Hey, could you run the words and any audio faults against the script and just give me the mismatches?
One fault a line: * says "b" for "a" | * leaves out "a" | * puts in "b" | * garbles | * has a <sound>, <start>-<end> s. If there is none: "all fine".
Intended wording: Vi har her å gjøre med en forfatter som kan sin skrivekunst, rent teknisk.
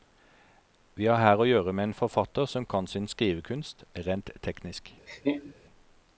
* has a laugh, 5.1-5.5 s